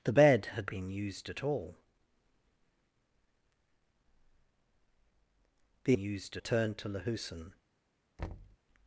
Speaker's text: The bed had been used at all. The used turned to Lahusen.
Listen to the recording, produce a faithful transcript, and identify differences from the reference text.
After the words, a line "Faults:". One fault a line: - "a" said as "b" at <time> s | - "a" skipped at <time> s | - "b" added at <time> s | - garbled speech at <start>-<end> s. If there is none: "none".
The bed had been used at all. The used turned to Lahusen.
Faults:
none